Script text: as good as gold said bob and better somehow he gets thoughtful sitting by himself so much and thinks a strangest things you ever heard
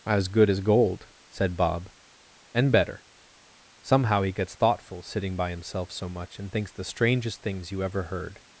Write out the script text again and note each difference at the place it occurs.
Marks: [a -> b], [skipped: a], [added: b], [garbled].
as good as gold said bob and better somehow he gets thoughtful sitting by himself so much and thinks [a -> the] strangest things you ever heard